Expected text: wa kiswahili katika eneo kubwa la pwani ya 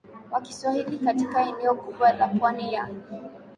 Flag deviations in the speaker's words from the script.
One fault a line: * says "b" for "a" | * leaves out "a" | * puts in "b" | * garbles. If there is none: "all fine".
all fine